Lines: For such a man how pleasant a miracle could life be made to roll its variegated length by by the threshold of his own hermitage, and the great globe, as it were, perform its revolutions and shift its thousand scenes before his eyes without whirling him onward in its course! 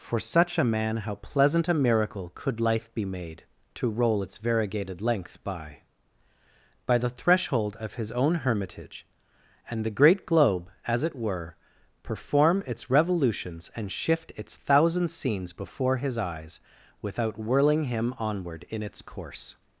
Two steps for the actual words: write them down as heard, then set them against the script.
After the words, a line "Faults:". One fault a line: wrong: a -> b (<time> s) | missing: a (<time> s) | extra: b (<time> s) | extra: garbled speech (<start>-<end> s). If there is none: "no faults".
For such a man how pleasant a miracle could life be made to roll its variegated length by by the threshold of his own hermitage, and the great globe, as it were, perform its revolutions and shift its thousand scenes before his eyes without whirling him onward in its course!
Faults:
no faults